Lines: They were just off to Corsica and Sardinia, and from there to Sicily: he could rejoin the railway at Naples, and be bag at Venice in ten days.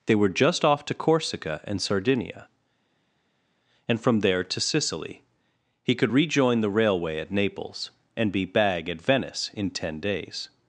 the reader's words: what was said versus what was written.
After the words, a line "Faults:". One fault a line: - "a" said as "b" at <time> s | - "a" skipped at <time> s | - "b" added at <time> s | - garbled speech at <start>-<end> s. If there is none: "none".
They were just off to Corsica and Sardinia, and from there to Sicily: he could rejoin the railway at Naples, and be bag at Venice in ten days.
Faults:
none